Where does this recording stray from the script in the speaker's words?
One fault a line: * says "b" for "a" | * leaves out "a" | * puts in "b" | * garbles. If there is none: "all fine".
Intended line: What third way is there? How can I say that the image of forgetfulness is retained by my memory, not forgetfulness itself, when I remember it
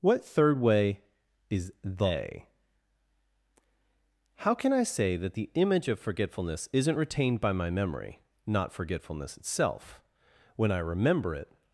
* says "they" for "there"
* says "isn't" for "is"